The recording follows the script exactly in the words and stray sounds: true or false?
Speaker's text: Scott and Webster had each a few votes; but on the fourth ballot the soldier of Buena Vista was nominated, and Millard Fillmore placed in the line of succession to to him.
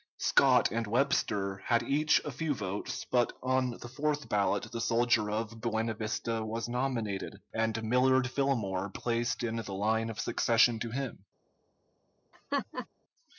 false